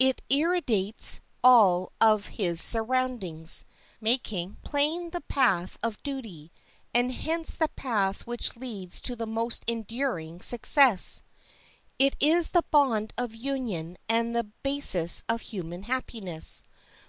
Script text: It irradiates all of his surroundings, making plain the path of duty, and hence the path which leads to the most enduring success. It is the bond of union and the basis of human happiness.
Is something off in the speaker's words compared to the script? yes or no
no